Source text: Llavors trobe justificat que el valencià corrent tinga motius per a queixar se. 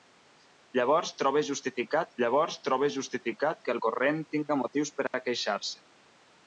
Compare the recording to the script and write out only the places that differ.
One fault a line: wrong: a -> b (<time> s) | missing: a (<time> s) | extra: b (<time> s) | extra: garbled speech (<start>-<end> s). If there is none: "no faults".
extra: llavors trobe justificat (2.2 s)
missing: valencià (3.8 s)